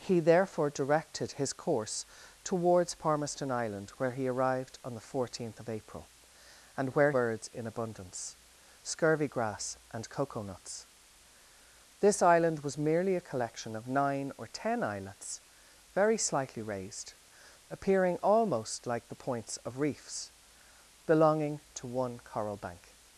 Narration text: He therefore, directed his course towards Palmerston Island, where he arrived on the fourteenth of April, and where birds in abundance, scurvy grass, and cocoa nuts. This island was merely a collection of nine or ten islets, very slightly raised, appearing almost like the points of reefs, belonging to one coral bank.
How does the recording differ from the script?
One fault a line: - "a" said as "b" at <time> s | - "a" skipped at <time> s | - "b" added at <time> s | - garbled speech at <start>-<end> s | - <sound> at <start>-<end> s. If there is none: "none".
none